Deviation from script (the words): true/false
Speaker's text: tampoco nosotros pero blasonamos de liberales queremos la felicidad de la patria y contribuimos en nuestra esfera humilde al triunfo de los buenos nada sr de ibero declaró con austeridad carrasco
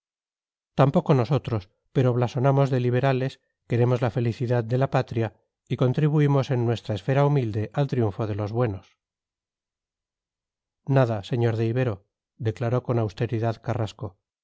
false